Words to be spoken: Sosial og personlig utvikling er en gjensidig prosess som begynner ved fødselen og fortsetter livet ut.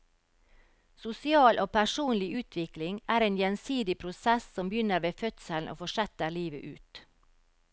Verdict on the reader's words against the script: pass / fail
pass